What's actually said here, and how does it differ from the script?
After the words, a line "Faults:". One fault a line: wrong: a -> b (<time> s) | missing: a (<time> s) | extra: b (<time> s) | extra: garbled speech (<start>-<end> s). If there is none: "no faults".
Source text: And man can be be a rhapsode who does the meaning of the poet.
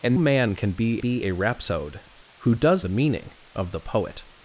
And man can be be a rhapsode who does the meaning of the poet.
Faults:
no faults